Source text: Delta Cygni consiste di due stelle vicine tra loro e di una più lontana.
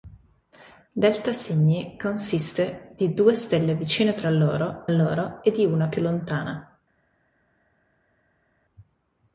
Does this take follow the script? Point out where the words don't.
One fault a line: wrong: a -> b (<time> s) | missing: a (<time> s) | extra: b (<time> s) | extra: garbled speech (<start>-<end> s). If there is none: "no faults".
extra: loro (4.9 s)